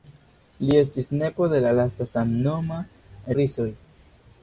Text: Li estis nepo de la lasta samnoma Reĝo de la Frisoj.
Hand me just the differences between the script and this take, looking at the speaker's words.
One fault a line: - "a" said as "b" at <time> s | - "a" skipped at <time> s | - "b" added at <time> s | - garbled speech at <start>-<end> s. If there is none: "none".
- "Reĝo de la" skipped at 2.8 s